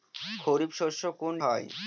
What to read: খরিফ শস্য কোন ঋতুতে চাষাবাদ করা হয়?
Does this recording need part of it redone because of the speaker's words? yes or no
yes